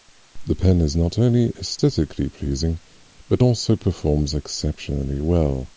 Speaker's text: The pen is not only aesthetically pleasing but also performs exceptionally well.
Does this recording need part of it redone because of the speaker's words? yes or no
no